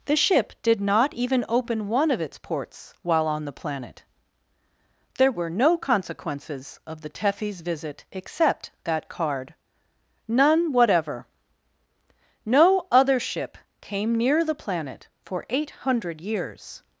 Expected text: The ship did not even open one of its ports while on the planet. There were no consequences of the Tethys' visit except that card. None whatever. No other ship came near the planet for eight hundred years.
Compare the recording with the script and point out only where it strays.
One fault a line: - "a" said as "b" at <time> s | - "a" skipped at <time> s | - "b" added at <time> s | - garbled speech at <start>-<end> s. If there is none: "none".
none